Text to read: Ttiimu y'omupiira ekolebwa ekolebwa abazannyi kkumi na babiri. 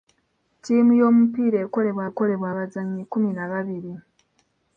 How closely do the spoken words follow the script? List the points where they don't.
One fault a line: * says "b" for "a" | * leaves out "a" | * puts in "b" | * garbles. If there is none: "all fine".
all fine